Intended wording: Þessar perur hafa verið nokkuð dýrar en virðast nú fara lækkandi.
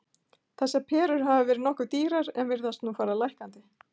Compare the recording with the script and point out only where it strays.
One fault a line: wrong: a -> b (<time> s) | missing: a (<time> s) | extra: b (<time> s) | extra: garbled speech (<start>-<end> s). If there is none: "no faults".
no faults